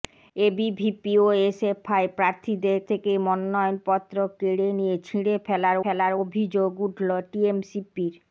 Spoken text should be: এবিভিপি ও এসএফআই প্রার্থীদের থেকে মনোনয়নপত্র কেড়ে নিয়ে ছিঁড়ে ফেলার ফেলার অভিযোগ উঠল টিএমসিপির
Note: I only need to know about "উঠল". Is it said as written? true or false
true